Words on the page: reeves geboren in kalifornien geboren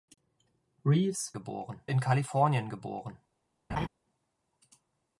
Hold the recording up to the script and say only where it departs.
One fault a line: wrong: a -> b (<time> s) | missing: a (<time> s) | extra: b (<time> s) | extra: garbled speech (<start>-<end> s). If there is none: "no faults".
no faults